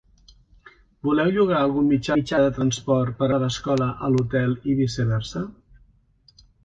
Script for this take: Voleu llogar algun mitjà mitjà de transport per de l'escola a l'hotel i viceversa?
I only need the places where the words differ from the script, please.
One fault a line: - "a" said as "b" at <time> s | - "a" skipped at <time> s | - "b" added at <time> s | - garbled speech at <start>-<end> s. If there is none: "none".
none